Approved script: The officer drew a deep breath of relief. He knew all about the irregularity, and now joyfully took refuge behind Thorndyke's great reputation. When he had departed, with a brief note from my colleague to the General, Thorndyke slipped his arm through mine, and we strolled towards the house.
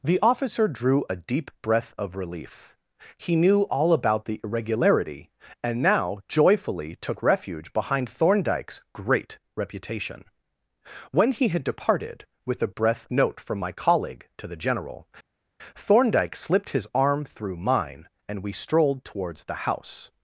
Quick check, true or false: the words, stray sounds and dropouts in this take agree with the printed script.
false